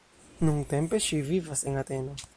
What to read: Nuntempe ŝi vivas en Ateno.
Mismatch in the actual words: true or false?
false